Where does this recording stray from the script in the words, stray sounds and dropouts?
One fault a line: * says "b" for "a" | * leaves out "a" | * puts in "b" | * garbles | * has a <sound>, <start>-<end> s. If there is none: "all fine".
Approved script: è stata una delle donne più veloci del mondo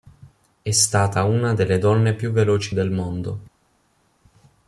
all fine